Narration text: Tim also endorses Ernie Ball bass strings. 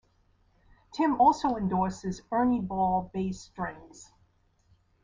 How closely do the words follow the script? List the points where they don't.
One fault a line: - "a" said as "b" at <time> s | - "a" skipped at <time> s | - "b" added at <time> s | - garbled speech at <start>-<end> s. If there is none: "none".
none